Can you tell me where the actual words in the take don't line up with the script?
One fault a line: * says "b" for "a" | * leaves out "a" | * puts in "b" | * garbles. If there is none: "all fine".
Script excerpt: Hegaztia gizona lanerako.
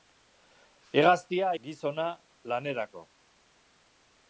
all fine